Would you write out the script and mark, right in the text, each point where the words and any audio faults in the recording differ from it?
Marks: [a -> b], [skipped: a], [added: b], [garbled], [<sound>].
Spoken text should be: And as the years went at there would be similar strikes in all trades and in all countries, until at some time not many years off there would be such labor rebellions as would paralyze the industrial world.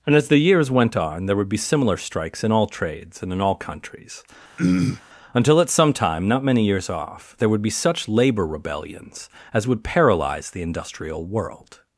And as the years went [at -> on] there would be similar strikes in all trades and in all countries, [throat clearing] until at some time not many years off there would be such labor rebellions as would paralyze the industrial world.